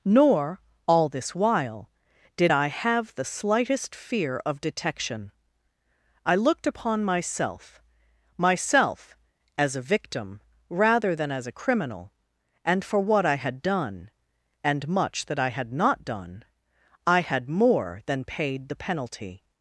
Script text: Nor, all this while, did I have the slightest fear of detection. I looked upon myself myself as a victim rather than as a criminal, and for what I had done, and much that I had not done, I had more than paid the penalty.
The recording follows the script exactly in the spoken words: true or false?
true